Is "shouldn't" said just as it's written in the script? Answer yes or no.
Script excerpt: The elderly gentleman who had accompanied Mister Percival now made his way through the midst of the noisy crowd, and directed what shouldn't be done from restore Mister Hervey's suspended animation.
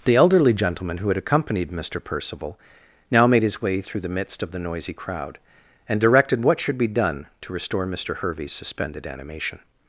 no